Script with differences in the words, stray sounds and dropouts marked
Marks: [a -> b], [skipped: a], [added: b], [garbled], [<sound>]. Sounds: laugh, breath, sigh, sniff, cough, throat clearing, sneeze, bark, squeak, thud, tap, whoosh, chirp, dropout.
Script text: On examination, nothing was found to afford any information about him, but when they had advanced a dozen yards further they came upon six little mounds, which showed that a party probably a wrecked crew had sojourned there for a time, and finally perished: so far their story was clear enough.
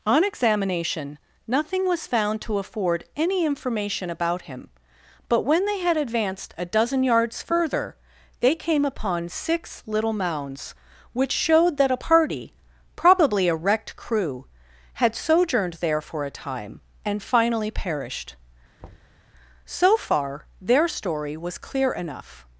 On examination, nothing was found to afford any information about him, but when they had advanced a dozen yards further they came upon six little mounds, which showed that a party probably a wrecked crew had sojourned there for a time, and finally perished: [thud] so far their story was clear enough.